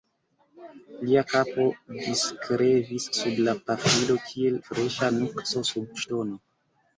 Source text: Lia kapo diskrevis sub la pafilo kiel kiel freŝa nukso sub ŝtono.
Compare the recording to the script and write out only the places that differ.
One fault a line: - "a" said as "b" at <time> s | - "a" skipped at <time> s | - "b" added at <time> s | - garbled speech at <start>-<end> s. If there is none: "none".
- "kiel" skipped at 4.6 s